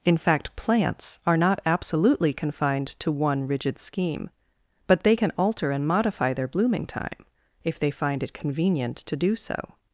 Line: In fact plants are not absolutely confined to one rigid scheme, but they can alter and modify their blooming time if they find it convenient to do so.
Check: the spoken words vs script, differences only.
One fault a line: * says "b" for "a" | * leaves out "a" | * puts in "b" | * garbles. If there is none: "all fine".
all fine